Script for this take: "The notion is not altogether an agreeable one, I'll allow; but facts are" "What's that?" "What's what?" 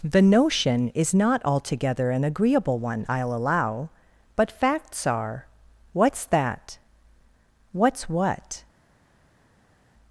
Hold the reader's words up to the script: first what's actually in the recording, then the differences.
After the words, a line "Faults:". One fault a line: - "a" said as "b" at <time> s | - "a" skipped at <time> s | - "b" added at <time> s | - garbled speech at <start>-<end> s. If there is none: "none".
"The notion is not altogether an agreeable one, I'll allow; but facts are" "What's that?" "What's what?"
Faults:
none